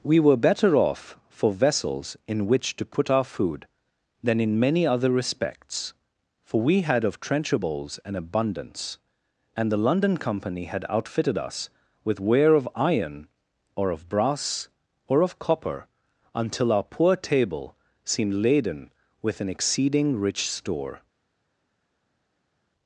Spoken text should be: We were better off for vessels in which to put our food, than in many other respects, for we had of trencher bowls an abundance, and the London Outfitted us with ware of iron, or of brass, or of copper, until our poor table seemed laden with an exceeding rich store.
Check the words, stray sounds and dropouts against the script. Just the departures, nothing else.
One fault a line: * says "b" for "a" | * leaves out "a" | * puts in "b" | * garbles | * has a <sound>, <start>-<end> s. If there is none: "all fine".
* puts in "Company had"